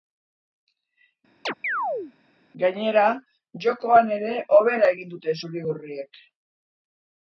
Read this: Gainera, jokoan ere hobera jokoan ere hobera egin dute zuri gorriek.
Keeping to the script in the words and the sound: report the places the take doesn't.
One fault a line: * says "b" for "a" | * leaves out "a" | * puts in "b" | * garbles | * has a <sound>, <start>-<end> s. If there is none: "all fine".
* has a chirp, 1.5-2.1 s
* leaves out "jokoan ere hobera"